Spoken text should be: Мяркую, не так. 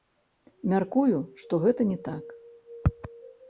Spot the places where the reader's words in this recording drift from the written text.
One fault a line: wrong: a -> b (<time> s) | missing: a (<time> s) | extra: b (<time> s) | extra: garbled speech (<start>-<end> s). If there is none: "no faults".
extra: што гэта (1.4 s)